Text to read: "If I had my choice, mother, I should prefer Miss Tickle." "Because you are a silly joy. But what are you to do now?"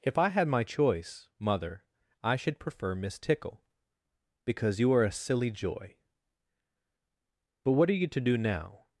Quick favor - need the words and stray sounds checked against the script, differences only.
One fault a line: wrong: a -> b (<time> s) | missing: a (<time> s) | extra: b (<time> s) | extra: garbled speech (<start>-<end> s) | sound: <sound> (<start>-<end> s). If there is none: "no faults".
no faults